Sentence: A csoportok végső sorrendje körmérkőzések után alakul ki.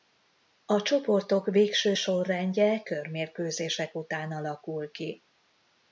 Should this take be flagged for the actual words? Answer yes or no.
no